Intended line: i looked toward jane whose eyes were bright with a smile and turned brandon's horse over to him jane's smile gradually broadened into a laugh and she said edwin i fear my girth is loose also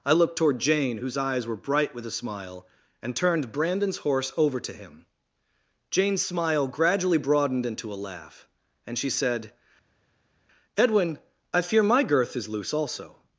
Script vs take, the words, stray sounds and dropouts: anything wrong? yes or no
no